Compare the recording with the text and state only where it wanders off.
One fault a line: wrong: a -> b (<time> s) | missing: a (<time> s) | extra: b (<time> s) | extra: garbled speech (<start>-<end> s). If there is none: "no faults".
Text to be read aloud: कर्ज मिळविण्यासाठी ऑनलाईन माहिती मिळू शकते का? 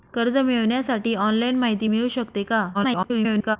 extra: garbled speech (2.7-3.6 s)